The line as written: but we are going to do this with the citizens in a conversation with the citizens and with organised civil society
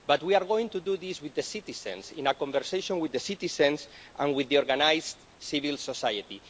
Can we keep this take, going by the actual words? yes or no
yes